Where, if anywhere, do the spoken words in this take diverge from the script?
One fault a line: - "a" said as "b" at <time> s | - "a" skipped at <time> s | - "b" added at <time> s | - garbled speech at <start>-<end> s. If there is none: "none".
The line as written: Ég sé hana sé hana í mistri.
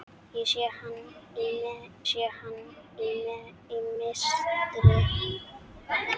none